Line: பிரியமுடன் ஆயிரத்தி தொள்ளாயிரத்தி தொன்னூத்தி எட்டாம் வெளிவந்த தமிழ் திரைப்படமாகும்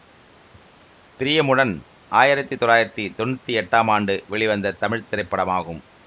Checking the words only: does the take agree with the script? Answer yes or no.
no